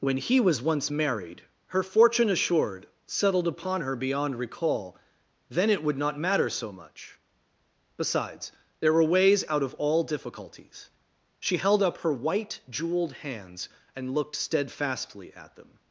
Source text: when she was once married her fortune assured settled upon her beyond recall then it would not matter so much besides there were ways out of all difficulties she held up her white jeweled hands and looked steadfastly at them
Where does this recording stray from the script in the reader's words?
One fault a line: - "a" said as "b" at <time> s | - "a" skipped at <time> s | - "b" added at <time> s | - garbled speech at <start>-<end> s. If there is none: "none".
- "she" said as "he" at 0.2 s